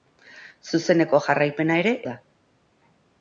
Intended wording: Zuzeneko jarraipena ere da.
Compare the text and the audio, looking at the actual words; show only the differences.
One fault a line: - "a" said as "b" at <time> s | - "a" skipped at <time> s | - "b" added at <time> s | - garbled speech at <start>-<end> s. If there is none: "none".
none